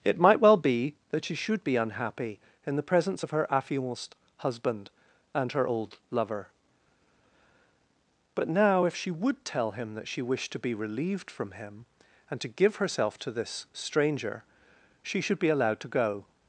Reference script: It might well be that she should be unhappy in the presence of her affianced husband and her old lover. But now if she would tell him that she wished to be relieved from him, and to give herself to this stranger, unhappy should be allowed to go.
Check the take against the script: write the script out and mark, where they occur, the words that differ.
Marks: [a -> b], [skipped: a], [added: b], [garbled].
It might well be that she should be unhappy in the presence of her affianced husband and her old lover. But now if she would tell him that she wished to be relieved from him, and to give herself to this stranger, [unhappy -> she] should be allowed to go.